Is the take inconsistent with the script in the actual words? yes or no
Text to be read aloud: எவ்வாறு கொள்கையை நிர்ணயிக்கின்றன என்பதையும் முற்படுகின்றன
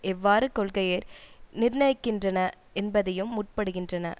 no